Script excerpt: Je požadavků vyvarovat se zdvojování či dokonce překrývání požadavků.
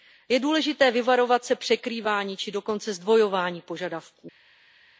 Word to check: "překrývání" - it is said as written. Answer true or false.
false